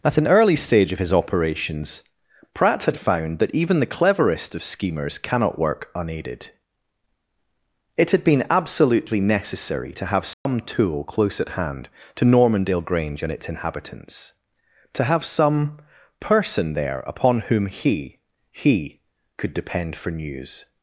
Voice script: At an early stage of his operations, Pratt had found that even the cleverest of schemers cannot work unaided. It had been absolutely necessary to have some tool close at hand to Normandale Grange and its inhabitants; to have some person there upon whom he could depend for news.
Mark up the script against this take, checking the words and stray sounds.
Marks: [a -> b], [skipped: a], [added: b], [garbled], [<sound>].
At an early stage of his operations, Pratt had found that even the cleverest of schemers cannot work unaided. It had been absolutely necessary to have some [dropout] tool close at hand to Normandale Grange and its inhabitants; to have some person there upon whom he [added: he] could depend for news.